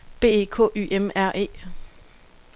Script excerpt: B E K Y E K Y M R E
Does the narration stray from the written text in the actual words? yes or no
yes